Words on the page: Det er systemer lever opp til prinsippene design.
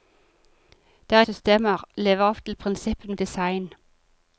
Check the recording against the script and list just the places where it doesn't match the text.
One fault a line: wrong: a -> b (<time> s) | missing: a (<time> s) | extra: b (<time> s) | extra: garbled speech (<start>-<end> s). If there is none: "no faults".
no faults